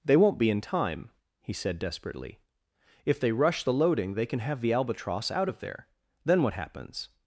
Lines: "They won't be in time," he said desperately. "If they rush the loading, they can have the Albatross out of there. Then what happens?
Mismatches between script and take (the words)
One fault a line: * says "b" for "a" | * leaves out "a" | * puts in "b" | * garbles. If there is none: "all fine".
all fine